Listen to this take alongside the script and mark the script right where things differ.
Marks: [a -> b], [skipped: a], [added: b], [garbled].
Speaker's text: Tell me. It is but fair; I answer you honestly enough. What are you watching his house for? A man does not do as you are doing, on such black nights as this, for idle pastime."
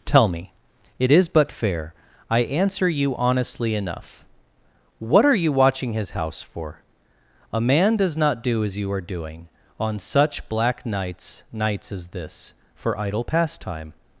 Tell me. It is but fair; I answer you honestly enough. What are you watching his house for? A man does not do as you are doing, on such black nights [added: nights] as this, for idle pastime."